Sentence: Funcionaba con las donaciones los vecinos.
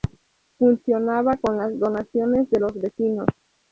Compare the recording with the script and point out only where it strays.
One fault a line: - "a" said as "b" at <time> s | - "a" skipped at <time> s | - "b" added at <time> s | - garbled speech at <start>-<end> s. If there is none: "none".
- "de" added at 2.5 s